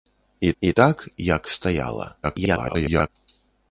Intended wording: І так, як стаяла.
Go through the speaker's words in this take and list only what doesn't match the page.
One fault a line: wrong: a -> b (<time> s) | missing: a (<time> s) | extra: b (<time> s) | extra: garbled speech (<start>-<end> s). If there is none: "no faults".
extra: і (0.6 s)
extra: garbled speech (2.2-3.1 s)